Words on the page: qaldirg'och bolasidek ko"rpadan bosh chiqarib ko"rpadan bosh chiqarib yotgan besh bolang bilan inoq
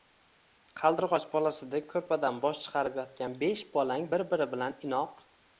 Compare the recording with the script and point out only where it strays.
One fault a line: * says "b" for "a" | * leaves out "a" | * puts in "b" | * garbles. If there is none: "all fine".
* leaves out "ko"rpadan bosh chiqarib"
* puts in "bir biri"